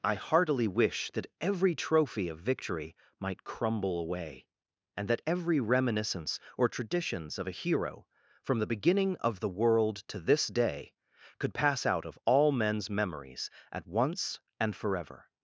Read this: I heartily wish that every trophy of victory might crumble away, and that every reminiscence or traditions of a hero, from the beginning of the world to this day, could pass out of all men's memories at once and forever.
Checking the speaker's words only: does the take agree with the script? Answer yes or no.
yes